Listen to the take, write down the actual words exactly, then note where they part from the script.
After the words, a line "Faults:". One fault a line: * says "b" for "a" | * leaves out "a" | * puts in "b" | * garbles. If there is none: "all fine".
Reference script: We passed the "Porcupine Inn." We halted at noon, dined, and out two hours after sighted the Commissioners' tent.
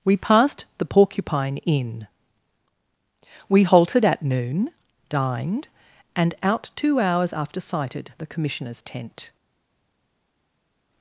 We passed the "Porcupine Inn." We halted at noon, dined, and out two hours after sighted the Commissioners' tent.
Faults:
all fine